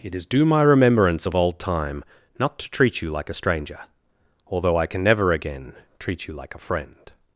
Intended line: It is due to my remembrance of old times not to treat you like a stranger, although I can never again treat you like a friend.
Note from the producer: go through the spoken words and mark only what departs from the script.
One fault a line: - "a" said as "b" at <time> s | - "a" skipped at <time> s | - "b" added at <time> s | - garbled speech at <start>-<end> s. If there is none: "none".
- "to" skipped at 0.5 s
- "times" said as "time" at 1.6 s